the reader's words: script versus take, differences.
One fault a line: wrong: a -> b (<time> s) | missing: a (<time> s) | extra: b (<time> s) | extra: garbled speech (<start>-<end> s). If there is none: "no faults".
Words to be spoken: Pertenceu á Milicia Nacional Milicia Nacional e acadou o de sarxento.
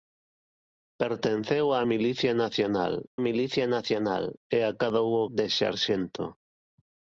no faults